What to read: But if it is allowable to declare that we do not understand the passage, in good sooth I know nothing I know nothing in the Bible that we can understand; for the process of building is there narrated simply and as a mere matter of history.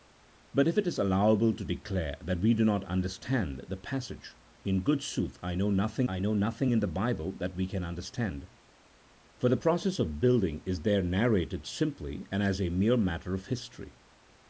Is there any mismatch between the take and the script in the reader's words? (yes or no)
no